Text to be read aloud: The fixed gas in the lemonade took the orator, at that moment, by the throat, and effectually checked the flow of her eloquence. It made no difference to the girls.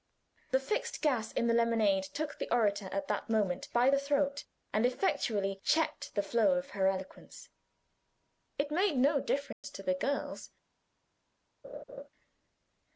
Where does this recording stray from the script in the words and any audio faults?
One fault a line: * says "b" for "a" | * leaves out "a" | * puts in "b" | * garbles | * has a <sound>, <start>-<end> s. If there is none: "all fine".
* has a dropout, 9.5-9.6 s
* has a laugh, 11.6-12.1 s